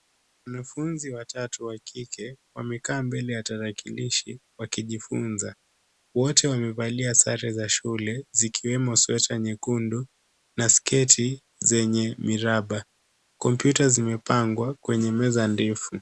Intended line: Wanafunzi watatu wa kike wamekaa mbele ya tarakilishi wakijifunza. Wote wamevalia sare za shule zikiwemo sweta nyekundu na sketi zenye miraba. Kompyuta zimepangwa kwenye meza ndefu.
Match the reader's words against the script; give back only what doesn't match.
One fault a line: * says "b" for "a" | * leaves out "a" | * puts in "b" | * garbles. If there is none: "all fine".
all fine